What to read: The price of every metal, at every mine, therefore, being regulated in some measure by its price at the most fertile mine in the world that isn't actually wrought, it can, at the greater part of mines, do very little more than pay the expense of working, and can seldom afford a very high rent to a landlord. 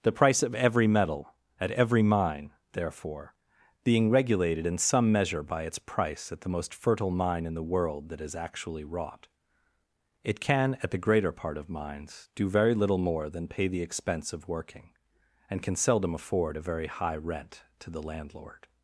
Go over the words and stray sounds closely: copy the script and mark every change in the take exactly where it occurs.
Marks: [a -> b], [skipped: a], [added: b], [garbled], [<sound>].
The price of every metal, at every mine, therefore, being regulated in some measure by its price at the most fertile mine in the world that [isn't -> is] actually wrought, it can, at the greater part of mines, do very little more than pay the expense of working, and can seldom afford a very high rent to [a -> the] landlord.